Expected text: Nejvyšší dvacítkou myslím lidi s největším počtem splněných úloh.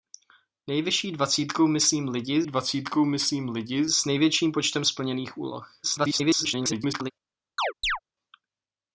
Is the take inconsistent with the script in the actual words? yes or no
yes